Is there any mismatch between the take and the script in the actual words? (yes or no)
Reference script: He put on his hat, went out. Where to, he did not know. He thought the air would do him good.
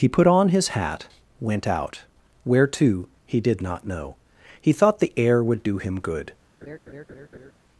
no